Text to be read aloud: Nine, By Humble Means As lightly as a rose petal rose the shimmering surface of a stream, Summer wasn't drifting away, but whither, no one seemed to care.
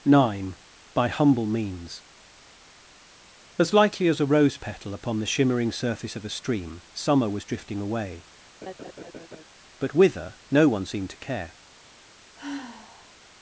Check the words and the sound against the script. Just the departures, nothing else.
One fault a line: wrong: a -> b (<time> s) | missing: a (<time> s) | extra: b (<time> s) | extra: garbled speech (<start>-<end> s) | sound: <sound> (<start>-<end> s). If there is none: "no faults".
wrong: rose -> upon (5.0 s)
wrong: wasn't -> was (7.3 s)
sound: laugh (8.6-9.4 s)
sound: sigh (12.4-13.1 s)